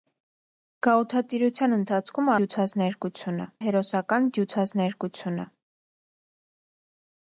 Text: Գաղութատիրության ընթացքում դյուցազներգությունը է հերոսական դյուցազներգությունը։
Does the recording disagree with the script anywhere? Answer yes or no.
no